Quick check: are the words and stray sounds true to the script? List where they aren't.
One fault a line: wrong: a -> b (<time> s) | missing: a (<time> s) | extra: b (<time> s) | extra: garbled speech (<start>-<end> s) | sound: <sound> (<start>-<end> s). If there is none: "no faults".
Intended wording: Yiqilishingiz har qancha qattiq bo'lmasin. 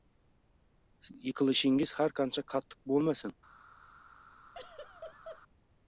sound: laugh (4.5-5.4 s)